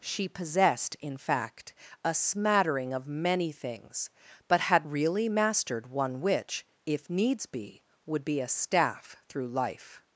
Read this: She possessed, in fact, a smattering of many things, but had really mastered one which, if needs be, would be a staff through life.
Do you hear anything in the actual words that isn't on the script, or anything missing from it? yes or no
no